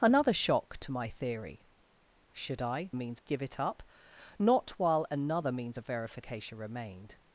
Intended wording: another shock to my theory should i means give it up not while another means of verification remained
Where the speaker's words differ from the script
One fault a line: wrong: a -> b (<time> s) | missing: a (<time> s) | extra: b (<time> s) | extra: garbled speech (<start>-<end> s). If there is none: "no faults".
no faults